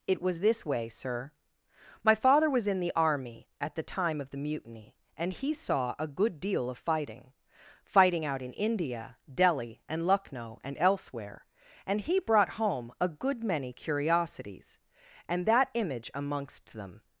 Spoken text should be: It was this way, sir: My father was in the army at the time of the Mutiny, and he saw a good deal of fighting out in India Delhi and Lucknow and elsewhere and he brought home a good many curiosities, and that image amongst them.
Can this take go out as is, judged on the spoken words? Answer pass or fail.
fail